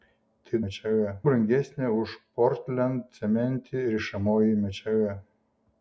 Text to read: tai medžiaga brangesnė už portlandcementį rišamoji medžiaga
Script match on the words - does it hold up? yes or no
yes